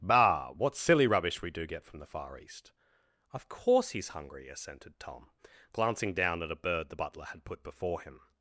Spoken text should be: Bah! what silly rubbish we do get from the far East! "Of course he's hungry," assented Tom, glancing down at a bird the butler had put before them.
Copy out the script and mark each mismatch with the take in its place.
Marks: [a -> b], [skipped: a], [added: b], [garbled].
Bah! what silly rubbish we do get from the far East! "Of course he's hungry," assented Tom, glancing down at a bird the butler had put before [them. -> him]